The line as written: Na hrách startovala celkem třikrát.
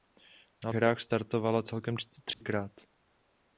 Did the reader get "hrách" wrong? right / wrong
right